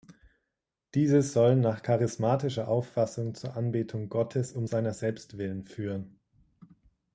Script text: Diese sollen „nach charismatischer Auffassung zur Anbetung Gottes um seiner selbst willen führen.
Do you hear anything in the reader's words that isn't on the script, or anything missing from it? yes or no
no